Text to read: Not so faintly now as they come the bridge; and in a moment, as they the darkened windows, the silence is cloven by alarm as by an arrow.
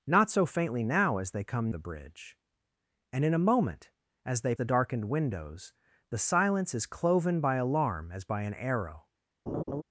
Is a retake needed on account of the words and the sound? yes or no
yes